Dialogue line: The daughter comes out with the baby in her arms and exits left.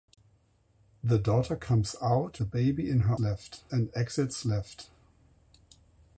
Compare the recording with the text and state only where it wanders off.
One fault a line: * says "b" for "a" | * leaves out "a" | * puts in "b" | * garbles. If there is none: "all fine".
* leaves out "with"
* says "left" for "arms"